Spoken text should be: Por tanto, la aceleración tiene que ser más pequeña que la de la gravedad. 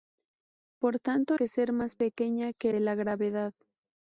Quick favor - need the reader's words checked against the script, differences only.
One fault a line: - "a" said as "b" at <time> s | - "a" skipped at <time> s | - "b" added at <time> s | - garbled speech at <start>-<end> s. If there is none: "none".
- "la aceleración tiene" skipped at 1.4 s
- "la" skipped at 2.7 s